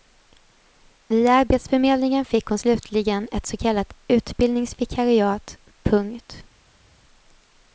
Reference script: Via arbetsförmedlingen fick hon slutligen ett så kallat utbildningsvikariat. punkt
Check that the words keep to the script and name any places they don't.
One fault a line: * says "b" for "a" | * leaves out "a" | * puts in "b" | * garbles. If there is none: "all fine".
all fine